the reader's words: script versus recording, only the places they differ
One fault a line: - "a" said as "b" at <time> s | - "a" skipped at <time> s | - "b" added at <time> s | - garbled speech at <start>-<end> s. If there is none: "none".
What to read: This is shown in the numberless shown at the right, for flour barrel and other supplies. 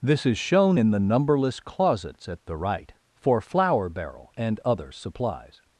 - "shown" said as "closets" at 1.6 s